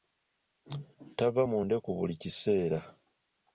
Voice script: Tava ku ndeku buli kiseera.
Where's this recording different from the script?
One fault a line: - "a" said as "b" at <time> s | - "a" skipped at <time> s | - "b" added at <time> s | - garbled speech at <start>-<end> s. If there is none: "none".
- "ku" said as "mu" at 1.5 s